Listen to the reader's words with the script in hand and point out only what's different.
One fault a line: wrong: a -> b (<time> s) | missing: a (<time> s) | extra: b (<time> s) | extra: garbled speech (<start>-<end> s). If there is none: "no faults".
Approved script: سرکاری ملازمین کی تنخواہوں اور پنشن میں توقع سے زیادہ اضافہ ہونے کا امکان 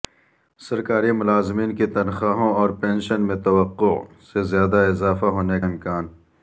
missing: کا (5.6 s)